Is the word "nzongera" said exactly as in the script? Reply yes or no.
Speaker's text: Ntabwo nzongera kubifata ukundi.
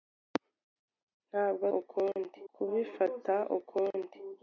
no